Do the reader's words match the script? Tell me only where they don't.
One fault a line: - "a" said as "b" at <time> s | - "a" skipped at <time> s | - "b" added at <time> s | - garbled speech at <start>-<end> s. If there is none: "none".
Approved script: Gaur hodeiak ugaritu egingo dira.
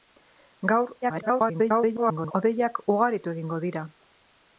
- garbled speech at 1.0-2.3 s